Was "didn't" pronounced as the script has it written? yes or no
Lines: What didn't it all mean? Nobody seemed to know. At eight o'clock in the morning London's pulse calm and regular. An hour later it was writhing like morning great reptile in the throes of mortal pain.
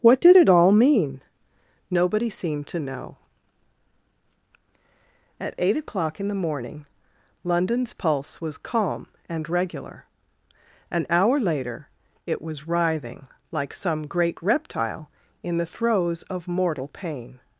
no